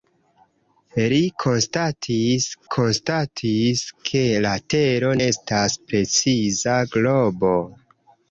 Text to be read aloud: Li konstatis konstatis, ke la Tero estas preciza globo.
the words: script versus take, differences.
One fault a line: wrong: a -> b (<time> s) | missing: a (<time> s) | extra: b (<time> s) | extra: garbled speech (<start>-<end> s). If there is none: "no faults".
no faults